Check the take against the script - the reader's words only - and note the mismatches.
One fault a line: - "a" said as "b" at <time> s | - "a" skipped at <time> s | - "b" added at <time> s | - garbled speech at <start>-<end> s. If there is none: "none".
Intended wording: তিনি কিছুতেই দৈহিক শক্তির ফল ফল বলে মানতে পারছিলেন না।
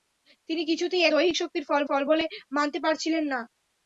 none